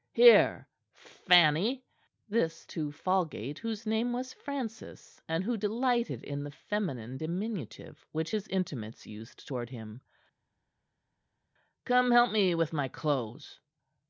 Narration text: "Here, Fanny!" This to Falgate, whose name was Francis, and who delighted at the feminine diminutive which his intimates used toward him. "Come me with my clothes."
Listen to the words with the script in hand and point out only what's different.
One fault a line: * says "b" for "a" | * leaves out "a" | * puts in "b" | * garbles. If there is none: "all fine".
* says "in" for "at"
* puts in "help"